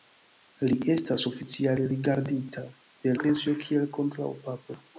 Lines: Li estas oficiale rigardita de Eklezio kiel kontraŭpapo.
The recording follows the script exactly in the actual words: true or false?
true